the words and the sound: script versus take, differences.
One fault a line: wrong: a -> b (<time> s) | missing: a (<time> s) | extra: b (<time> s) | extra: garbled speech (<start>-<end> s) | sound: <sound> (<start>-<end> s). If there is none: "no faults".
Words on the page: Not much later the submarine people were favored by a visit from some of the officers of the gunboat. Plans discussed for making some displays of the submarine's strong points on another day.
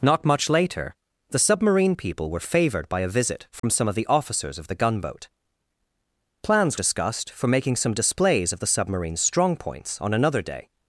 sound: dropout (3.6-3.6 s)